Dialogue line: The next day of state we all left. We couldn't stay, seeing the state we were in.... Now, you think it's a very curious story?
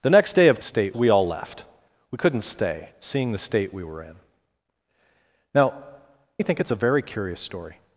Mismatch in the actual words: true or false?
false